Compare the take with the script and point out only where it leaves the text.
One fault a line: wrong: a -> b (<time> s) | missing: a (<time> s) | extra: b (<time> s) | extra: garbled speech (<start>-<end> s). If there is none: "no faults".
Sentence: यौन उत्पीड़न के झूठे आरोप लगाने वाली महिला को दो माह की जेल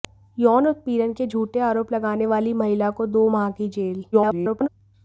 extra: garbled speech (4.1-4.7 s)